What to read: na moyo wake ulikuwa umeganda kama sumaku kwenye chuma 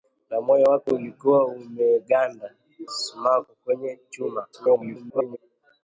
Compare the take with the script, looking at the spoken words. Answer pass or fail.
fail